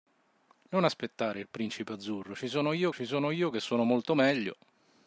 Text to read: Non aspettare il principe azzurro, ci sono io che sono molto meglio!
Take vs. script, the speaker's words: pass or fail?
fail